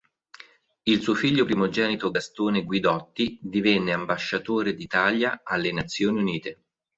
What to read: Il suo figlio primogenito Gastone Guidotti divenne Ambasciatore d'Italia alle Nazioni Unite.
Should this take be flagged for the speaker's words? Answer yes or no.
no